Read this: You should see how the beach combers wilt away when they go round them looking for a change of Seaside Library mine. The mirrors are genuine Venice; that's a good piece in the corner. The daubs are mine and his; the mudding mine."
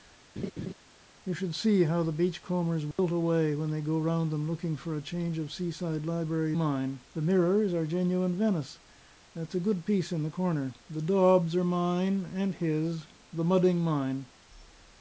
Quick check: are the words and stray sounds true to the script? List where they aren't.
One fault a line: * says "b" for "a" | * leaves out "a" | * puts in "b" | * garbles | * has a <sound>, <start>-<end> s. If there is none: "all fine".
* has a laugh, 0.4-0.7 s
* has a dropout, 2.9-3.0 s